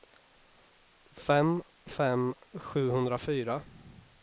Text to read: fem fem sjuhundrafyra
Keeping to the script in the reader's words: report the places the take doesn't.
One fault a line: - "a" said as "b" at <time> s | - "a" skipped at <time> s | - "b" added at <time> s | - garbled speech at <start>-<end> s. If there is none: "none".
none